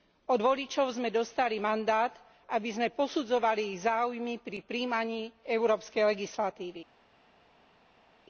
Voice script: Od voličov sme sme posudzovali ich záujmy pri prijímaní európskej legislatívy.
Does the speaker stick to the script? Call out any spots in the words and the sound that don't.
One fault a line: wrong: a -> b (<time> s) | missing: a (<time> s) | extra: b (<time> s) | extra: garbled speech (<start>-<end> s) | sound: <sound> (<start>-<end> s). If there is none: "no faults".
extra: dostali mandát aby (1.1 s)